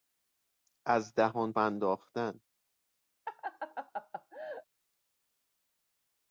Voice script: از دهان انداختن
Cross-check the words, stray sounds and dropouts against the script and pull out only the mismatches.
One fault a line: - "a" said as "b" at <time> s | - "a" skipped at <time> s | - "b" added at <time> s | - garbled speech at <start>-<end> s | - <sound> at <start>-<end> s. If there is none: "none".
- laugh at 3.3-4.7 s